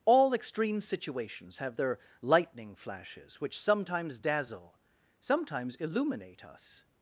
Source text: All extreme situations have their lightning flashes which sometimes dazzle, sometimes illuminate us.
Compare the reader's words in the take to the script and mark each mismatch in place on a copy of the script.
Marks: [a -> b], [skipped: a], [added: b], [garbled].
All extreme situations have their lightning flashes which sometimes dazzle, sometimes illuminate us.